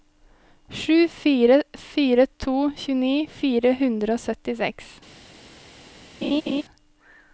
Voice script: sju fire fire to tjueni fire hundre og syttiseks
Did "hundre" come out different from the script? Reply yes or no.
no